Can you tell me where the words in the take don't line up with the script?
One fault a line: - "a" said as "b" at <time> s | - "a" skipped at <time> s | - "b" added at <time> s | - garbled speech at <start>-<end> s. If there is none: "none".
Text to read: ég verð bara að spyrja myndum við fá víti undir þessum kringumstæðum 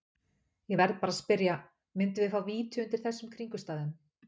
none